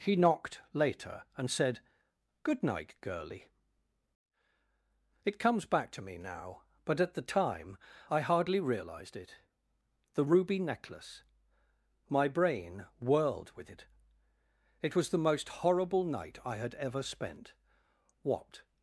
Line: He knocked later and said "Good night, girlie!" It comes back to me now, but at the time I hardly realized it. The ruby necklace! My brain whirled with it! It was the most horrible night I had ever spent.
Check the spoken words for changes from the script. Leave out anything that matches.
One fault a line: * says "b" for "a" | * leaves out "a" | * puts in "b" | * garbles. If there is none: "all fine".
* puts in "What"